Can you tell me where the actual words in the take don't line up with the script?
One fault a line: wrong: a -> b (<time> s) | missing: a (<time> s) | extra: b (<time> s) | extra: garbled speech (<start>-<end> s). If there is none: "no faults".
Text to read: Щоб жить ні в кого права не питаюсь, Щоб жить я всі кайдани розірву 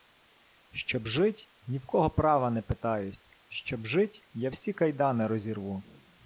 no faults